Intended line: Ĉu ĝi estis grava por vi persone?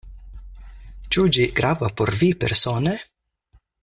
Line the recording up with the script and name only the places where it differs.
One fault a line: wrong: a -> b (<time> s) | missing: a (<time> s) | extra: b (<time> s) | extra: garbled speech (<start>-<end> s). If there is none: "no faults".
missing: estis (1.4 s)